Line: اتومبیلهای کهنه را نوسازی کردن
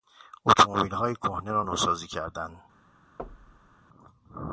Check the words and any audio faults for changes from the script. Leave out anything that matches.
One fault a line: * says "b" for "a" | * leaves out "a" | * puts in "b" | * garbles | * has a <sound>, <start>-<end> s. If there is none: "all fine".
* has a thud, 3.2-3.8 s